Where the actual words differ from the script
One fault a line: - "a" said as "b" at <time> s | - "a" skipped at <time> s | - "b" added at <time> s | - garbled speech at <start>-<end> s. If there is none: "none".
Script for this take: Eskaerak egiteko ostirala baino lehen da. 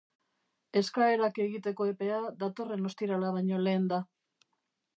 - "epea datorren" added at 1.9 s